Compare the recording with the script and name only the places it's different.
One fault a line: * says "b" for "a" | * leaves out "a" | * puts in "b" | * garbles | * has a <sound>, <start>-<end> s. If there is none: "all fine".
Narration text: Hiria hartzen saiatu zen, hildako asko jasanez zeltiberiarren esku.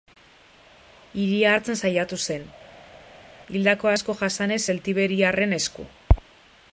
all fine